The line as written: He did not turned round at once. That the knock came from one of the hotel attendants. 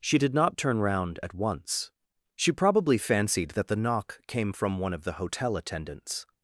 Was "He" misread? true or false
true